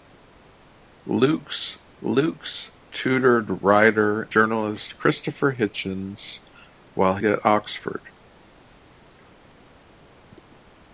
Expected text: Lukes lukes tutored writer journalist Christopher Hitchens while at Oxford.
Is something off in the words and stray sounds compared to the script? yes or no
no